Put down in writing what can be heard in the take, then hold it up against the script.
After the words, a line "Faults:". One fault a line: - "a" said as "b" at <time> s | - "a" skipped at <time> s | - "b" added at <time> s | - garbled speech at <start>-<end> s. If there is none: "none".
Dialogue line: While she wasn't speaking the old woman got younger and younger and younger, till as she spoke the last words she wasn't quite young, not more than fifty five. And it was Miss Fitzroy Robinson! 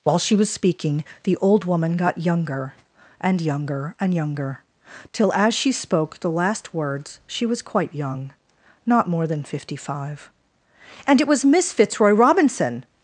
While she was speaking the old woman got younger and younger and younger, till as she spoke the last words she was quite young, not more than fifty five. And it was Miss Fitzroy Robinson!
Faults:
- "wasn't" said as "was" at 0.3 s
- "wasn't" said as "was" at 7.5 s